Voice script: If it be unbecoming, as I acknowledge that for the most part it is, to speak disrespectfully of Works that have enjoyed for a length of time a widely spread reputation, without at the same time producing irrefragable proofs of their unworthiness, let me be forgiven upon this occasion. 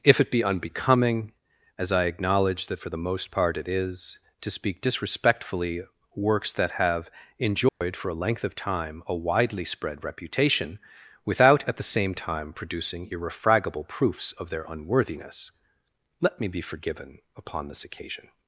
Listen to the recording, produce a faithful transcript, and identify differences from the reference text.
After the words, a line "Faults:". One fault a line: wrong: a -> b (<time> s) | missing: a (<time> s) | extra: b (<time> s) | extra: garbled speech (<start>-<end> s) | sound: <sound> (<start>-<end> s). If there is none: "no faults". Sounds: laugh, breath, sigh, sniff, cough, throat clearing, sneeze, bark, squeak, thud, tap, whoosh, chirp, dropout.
If it be unbecoming, as I acknowledge that for the most part it is, to speak disrespectfully Works that have enjoyed for a length of time a widely spread reputation, without at the same time producing irrefragable proofs of their unworthiness, let me be forgiven upon this occasion.
Faults:
missing: of (5.8 s)
sound: dropout (7.7-7.8 s)